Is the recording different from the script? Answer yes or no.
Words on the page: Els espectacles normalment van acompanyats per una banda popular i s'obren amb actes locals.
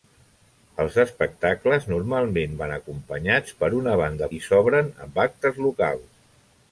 yes